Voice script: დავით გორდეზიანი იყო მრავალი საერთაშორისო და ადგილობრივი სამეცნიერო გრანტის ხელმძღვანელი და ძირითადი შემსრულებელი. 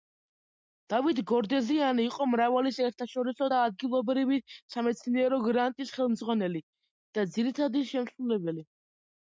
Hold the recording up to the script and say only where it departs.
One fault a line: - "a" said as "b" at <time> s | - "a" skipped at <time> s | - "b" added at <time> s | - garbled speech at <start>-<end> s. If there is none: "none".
none